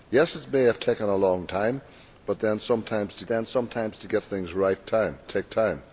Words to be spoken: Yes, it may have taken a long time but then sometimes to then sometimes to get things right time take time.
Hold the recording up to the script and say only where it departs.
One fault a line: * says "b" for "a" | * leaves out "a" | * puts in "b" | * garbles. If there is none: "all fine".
all fine